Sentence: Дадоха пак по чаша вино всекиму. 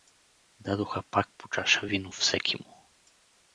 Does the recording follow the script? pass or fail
pass